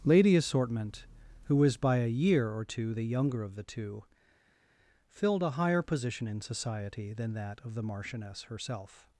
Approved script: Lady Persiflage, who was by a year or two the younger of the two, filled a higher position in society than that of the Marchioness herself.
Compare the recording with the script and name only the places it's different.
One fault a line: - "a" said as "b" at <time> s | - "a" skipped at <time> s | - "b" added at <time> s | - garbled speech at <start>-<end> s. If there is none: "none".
- "Persiflage" said as "Assortment" at 0.3 s